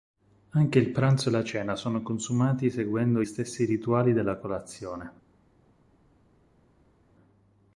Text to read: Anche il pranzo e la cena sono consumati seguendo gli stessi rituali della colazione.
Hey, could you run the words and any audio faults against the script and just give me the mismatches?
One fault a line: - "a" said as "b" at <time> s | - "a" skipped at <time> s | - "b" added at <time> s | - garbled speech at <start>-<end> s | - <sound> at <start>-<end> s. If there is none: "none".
- "gli" skipped at 3.2 s